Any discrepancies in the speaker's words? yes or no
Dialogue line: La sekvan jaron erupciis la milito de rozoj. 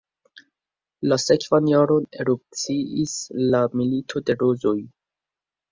no